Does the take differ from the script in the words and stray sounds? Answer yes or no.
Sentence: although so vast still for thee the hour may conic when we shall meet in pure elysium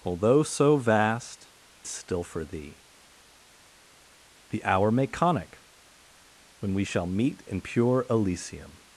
no